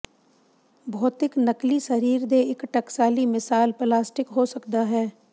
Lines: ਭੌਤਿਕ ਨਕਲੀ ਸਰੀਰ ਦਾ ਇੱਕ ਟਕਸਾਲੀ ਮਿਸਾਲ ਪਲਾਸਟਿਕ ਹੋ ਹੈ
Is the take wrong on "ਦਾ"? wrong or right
wrong